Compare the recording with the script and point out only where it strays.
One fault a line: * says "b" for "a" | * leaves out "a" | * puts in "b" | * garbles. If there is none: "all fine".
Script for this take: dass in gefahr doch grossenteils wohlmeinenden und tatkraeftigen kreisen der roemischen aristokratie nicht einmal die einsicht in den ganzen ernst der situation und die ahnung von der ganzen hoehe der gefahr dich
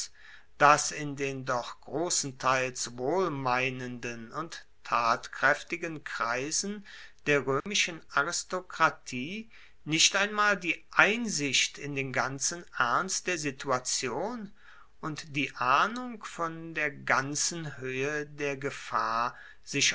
* says "den" for "gefahr"
* says "sich" for "dich"